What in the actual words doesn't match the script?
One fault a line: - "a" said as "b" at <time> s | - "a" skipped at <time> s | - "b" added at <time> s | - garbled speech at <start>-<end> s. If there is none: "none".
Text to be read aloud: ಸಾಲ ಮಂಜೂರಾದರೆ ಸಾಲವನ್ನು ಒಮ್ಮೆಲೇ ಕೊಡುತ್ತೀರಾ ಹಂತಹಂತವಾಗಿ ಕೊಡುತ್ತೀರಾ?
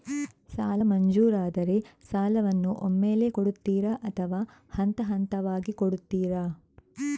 - "ಅಥವಾ" added at 4.0 s